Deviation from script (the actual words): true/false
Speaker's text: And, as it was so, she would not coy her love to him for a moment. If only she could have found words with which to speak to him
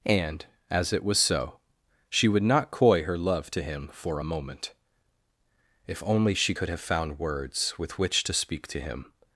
false